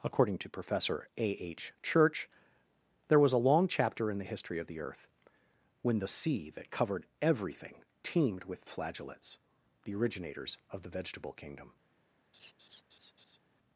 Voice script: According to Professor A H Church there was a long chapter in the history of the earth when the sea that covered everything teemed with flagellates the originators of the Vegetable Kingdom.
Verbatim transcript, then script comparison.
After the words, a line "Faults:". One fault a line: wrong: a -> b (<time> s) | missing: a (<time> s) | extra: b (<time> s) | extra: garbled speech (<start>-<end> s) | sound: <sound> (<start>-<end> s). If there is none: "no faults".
According to Professor A H Church there was a long chapter in the history of the earth when the sea that covered everything teemed with flagellates the originators of the Vegetable Kingdom.
Faults:
sound: laugh (12.3-13.4 s)